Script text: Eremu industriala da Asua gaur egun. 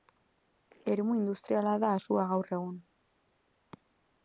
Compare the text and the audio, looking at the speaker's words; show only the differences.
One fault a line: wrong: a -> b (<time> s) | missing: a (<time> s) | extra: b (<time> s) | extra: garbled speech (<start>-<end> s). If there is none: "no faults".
no faults